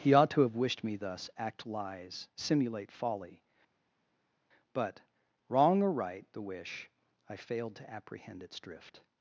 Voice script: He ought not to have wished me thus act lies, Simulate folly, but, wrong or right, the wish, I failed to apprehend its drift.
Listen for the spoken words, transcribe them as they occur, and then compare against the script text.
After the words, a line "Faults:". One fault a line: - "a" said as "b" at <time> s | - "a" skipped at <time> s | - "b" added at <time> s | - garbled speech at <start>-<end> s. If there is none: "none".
He ought to have wished me thus act lies, Simulate folly, but, wrong or right, the wish, I failed to apprehend its drift.
Faults:
- "not" skipped at 0.3 s